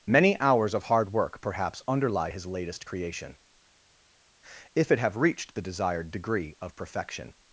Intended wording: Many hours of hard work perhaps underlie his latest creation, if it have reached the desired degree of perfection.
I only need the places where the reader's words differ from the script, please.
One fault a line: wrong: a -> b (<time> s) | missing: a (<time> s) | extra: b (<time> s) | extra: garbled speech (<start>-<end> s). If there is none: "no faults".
no faults